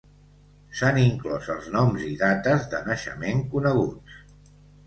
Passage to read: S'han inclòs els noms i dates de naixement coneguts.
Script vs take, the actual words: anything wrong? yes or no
no